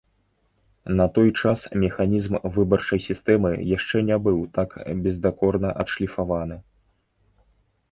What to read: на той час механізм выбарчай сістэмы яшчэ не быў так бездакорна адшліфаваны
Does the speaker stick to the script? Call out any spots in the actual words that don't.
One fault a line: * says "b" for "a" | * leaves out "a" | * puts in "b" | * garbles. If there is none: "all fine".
all fine